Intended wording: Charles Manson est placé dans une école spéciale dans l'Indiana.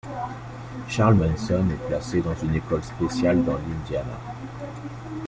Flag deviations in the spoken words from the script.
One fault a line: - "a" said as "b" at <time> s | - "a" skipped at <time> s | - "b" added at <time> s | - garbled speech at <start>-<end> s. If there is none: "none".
none